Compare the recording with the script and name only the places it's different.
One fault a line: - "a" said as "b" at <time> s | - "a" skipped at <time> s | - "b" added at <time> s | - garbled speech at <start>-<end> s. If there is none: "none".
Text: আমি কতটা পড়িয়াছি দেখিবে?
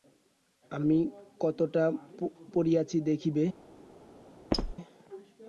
none